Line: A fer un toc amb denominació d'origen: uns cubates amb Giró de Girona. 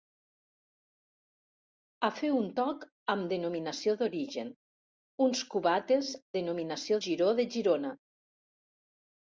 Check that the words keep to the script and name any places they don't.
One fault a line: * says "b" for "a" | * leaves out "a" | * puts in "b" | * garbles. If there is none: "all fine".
* says "denominació" for "amb"